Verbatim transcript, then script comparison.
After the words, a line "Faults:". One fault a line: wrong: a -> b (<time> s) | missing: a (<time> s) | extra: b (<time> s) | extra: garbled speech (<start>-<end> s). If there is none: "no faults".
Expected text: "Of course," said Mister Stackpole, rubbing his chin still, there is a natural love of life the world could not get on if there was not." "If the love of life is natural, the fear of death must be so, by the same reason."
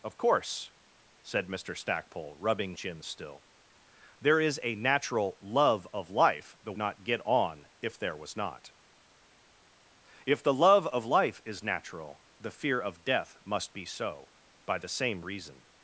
"Of course," said Mister Stackpole, rubbing chin still, there is a natural love of life the not get on if there was not." "If the love of life is natural, the fear of death must be so, by the same reason."
Faults:
missing: his (2.7 s)
missing: world could (6.8 s)